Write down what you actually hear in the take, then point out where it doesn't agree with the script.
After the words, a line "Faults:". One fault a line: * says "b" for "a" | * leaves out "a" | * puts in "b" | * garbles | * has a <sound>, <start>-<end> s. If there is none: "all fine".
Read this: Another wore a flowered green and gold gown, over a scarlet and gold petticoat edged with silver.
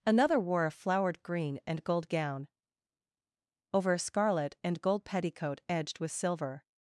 Another wore a flowered green and gold gown, over a scarlet and gold petticoat edged with silver.
Faults:
all fine